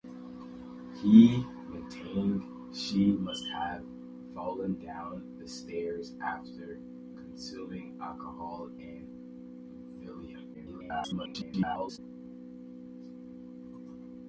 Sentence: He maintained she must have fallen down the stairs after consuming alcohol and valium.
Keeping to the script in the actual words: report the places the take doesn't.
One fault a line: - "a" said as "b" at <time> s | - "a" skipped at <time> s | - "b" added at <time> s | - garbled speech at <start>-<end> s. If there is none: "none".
- garbled speech at 10.5-12.0 s